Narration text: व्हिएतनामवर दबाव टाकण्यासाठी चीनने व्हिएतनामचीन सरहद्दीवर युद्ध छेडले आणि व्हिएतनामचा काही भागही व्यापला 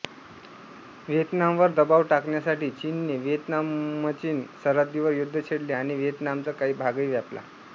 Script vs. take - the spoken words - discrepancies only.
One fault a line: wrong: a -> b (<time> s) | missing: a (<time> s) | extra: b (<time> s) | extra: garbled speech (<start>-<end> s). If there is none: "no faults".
no faults